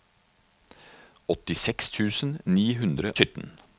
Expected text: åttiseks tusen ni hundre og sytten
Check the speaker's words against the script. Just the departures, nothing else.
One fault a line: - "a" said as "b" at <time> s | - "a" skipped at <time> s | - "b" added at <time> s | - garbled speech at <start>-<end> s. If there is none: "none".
- "og" skipped at 3.1 s